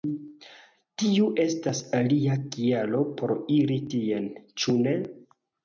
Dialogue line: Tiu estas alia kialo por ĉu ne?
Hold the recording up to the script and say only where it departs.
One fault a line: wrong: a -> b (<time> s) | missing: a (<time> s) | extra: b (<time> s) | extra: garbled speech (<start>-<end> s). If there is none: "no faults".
extra: iri tien (3.6 s)